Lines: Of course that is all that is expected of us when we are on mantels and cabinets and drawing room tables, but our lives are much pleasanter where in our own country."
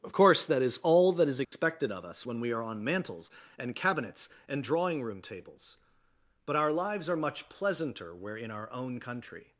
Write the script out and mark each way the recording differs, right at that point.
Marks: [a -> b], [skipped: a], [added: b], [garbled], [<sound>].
Of course that is all that is expected [dropout] of us when we are on mantels and cabinets and drawing room tables, but our lives are much pleasanter where in our own country."